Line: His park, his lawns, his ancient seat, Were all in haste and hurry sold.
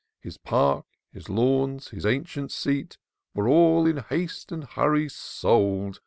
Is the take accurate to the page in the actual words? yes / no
yes